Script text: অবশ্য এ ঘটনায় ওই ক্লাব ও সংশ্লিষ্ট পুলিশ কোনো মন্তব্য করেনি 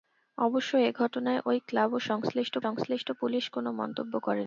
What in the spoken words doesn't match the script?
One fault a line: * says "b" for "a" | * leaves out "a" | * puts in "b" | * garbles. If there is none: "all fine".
* puts in "সংশ্লিষ্ট"